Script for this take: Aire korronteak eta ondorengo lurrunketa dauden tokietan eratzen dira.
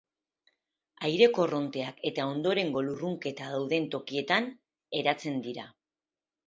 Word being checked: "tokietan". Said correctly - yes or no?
yes